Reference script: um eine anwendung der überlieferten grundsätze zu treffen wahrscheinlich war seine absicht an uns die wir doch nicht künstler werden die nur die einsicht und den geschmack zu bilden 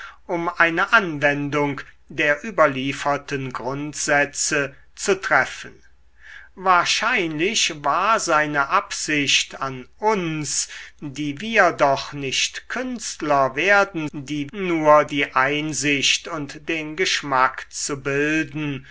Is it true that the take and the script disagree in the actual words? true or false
false